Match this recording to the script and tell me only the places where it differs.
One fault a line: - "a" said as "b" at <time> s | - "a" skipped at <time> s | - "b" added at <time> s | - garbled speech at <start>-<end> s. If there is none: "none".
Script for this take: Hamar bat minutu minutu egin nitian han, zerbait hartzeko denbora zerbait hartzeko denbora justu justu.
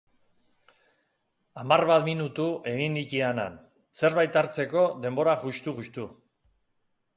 - "minutu" skipped at 2.5 s
- "zerbait hartzeko denbora" skipped at 5.4 s